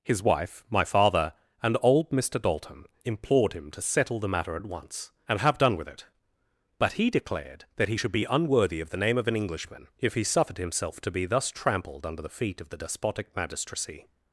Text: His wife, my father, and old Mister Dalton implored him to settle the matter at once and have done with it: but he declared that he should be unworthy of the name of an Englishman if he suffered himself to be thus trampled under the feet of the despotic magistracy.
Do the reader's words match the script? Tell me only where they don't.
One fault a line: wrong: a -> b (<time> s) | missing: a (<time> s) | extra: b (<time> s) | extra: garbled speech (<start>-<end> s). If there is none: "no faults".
no faults